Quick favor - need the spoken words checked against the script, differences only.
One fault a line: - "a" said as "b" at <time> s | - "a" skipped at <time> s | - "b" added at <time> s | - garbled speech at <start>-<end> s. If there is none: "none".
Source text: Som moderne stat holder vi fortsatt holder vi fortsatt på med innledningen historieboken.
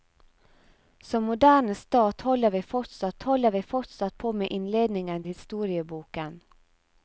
none